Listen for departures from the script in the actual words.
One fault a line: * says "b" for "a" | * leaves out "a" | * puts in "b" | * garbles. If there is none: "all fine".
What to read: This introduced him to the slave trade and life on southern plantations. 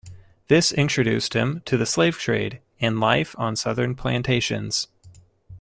all fine